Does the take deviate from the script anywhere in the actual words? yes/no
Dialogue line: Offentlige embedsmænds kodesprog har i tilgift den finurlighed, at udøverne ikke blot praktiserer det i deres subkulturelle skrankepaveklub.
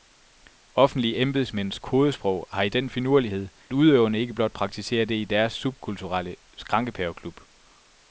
yes